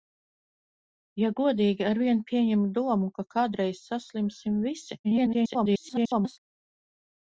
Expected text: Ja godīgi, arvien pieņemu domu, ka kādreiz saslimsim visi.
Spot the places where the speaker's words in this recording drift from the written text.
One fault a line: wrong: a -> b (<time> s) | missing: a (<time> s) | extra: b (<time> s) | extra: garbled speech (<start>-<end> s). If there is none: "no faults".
extra: garbled speech (5.0-6.4 s)